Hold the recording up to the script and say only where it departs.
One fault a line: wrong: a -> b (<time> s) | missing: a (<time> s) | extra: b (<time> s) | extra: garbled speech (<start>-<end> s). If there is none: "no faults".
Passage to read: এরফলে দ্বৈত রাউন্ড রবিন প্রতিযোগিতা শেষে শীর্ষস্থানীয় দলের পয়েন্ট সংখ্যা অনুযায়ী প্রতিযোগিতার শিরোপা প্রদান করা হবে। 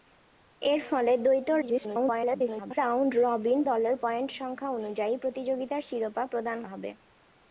extra: garbled speech (1.6-2.8 s)
missing: প্রতিযোগিতা শেষে শীর্ষস্থানীয় (3.6 s)
missing: করা (6.6 s)